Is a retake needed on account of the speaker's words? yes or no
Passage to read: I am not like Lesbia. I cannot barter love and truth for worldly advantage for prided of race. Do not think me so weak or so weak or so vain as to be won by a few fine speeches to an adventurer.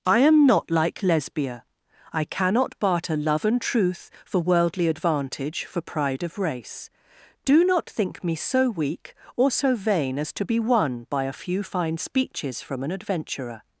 yes